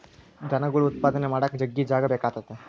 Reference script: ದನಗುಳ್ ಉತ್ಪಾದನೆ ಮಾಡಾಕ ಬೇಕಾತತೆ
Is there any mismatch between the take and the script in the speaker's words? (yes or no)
yes